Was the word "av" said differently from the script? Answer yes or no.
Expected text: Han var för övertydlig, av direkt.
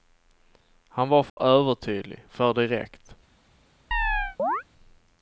yes